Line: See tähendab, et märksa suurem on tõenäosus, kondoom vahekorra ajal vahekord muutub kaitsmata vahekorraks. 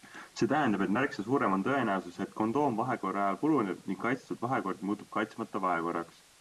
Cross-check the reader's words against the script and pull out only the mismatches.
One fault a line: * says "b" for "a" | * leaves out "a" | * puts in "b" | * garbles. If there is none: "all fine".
* puts in "et"
* puts in "puruneb ning kaitstud"